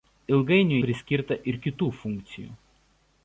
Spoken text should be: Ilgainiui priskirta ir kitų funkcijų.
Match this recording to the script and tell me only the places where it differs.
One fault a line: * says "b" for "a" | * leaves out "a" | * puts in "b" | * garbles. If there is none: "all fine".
all fine